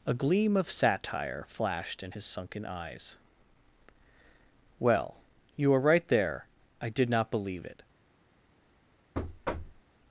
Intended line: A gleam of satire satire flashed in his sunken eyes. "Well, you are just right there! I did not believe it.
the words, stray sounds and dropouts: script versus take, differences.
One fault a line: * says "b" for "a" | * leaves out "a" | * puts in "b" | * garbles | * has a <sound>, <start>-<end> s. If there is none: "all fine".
* leaves out "satire"
* leaves out "just"
* has a thud, 9.1-9.8 s